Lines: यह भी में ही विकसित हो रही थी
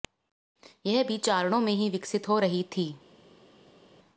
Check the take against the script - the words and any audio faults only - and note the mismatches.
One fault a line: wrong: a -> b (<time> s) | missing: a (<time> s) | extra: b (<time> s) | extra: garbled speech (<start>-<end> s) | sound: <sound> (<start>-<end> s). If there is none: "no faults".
extra: चारणों (1.2 s)